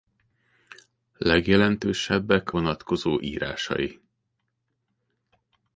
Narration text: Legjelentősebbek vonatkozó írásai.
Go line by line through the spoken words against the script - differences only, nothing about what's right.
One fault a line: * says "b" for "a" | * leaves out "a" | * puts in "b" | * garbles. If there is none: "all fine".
all fine